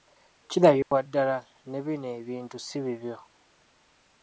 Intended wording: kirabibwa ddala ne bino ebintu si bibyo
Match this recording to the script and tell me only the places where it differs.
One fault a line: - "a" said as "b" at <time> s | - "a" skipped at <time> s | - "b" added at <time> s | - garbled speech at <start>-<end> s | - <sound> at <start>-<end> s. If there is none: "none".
- dropout at 0.8-0.9 s